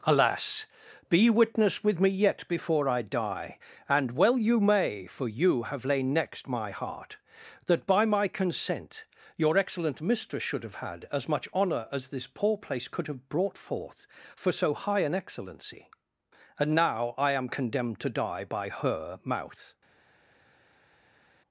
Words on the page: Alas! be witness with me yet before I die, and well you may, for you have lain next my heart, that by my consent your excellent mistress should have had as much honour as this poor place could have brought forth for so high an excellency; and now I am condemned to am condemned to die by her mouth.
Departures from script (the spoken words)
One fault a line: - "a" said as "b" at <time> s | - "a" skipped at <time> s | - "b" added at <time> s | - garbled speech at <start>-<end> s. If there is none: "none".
- "am condemned to" skipped at 18.1 s